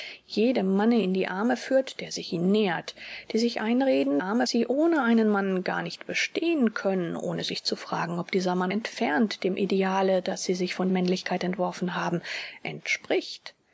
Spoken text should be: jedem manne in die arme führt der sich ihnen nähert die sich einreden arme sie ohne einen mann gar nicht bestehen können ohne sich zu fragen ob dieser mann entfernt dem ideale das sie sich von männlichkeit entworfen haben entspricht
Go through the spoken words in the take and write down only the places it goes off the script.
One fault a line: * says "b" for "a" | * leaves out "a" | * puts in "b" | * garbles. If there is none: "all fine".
all fine